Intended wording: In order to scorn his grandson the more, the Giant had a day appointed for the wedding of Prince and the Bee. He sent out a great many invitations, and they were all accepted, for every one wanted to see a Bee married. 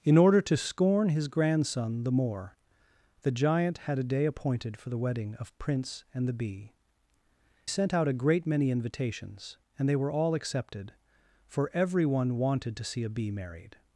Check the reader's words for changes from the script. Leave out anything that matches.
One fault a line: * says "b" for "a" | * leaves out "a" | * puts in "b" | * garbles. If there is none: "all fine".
* leaves out "He"